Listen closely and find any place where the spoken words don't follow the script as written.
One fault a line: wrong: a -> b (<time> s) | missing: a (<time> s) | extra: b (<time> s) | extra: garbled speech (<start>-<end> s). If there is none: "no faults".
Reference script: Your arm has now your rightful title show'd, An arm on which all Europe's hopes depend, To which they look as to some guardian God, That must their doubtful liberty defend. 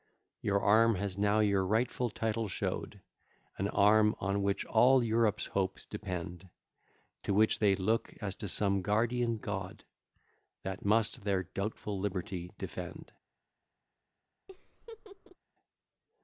no faults